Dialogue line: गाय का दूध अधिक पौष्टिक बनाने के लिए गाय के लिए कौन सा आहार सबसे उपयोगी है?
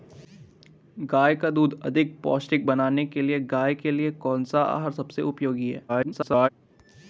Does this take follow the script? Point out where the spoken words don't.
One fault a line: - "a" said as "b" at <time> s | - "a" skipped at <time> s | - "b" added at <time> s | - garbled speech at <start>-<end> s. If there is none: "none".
- garbled speech at 5.9-6.5 s